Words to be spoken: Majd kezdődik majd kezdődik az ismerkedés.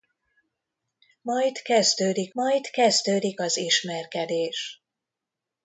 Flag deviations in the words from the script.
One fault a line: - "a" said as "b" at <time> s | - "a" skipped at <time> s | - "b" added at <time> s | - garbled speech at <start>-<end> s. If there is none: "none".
none